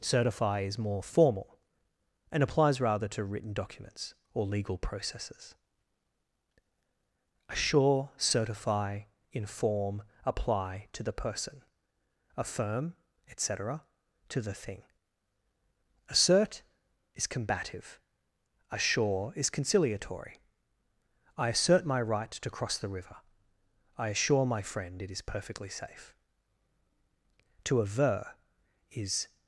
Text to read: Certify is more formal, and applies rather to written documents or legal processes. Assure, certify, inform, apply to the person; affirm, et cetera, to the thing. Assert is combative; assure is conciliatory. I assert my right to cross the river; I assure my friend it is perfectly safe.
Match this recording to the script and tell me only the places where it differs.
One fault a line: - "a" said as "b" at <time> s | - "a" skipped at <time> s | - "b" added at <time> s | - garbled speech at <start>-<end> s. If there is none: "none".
- "To aver is" added at 27.6 s